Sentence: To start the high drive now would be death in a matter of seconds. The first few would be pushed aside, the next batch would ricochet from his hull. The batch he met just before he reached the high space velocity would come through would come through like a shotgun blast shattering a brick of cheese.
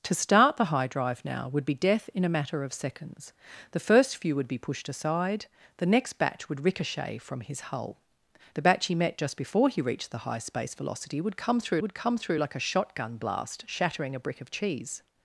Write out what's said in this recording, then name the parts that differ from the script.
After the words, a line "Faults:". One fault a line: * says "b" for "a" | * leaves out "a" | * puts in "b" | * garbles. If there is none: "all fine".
To start the high drive now would be death in a matter of seconds. The first few would be pushed aside, the next batch would ricochet from his hull. The batch he met just before he reached the high space velocity would come through would come through like a shotgun blast shattering a brick of cheese.
Faults:
all fine